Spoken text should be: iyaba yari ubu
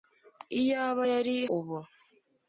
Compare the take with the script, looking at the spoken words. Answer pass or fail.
pass